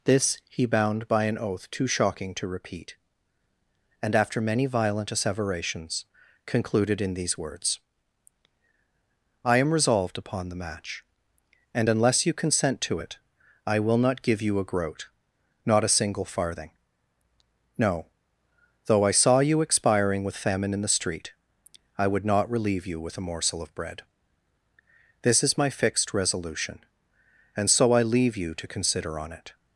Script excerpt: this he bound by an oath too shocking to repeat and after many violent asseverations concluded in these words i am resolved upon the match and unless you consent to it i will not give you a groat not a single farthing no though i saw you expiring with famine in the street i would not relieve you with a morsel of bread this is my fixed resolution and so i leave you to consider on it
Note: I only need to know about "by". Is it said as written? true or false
true